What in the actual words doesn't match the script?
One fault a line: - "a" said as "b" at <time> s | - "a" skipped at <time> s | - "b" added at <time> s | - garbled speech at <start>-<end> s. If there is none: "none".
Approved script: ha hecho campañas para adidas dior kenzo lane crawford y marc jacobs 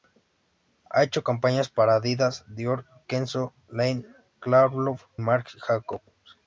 - "y" skipped at 5.0 s